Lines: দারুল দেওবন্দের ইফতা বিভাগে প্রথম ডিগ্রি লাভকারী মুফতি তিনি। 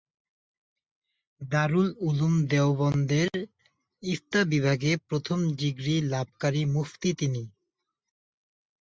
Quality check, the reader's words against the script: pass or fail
fail